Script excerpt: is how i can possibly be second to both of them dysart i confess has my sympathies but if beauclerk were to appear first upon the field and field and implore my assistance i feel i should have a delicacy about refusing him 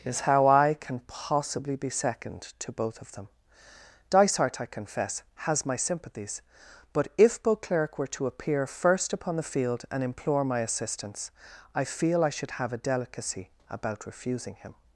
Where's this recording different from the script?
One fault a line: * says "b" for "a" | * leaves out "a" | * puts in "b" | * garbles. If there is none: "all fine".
* leaves out "field and"